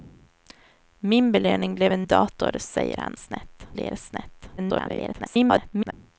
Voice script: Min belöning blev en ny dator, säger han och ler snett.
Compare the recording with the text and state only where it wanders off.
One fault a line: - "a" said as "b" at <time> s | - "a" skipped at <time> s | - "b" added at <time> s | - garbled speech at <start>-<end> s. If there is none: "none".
- "ny" skipped at 2.1 s
- "och" said as "snett" at 3.1 s
- garbled speech at 4.6-5.9 s